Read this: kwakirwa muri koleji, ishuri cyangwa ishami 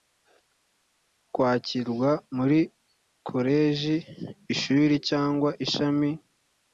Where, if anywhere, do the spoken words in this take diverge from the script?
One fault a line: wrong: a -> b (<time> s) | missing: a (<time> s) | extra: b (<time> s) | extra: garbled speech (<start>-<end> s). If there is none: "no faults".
no faults